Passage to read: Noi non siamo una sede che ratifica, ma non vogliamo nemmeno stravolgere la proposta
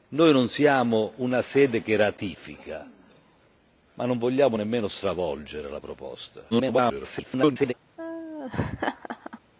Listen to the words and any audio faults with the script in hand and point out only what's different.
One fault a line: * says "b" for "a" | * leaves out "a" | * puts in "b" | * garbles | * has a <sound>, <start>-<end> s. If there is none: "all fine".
* garbles
* has a laugh, 8.0-9.4 s